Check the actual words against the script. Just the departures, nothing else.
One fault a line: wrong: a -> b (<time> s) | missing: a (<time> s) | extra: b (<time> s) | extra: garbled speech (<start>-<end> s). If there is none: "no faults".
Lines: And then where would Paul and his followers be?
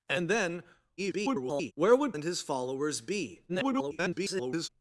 extra: garbled speech (1.0-1.7 s)
missing: Paul (2.2 s)
extra: garbled speech (3.5-4.7 s)